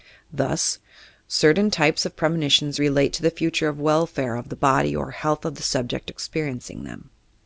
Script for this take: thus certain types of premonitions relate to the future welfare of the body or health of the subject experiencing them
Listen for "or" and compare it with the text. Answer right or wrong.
right